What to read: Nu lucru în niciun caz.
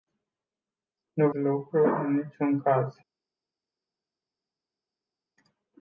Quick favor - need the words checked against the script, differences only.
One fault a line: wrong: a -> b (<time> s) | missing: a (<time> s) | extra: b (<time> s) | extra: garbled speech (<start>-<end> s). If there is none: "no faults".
no faults